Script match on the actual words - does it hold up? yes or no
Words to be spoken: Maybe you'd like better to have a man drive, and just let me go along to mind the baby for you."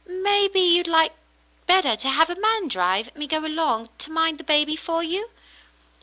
no